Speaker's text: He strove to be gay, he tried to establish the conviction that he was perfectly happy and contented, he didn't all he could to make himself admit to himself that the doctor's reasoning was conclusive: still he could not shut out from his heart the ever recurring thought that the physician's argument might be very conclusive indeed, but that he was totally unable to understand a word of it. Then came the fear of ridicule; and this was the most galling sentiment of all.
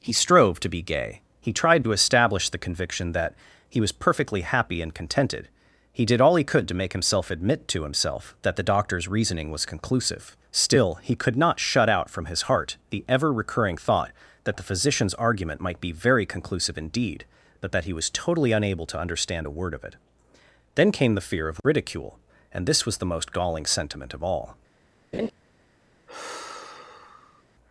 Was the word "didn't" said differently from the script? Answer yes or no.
yes